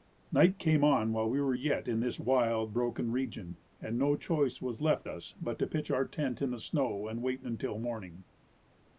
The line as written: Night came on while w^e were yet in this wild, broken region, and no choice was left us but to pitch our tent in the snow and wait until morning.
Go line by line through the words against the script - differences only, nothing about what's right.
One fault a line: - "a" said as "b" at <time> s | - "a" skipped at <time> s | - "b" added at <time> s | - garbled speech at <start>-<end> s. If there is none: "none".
none